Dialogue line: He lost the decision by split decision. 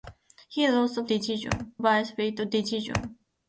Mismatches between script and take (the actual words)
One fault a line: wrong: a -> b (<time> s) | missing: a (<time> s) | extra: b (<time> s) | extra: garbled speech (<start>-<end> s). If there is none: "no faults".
no faults